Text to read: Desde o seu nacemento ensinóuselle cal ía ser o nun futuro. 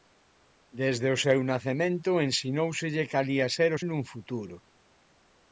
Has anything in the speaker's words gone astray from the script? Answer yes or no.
no